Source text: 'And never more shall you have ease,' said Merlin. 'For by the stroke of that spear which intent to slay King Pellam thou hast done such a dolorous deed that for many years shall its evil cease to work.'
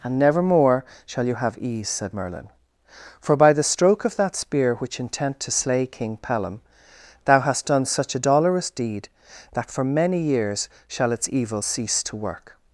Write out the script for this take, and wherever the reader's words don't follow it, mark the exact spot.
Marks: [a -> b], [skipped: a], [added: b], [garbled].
'And never more shall you have ease,' said Merlin. 'For by the stroke of that spear which intent to slay King Pellam thou hast done such a dolorous deed that for many years shall its evil cease to work.'